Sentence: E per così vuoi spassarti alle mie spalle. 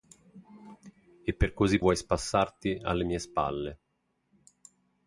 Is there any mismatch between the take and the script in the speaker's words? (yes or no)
no